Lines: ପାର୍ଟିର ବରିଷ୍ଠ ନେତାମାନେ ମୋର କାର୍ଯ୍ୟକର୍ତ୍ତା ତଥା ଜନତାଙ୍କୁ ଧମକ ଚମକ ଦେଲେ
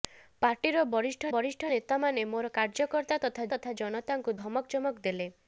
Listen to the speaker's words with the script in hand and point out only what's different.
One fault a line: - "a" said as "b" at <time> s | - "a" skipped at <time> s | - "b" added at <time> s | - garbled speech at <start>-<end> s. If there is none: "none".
- "ବରିଷ୍ଠ" added at 1.3 s
- "ତଥା" added at 3.5 s